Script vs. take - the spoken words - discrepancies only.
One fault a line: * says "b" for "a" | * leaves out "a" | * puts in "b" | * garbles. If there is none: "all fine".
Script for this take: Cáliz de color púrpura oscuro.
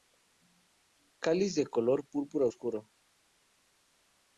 all fine